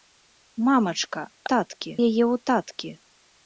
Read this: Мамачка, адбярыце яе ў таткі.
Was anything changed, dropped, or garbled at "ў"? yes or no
no